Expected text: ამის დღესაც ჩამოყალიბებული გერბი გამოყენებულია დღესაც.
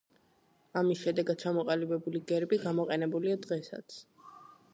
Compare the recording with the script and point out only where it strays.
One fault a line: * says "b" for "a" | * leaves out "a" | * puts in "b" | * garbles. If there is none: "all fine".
* says "შედეგად" for "დღესაც"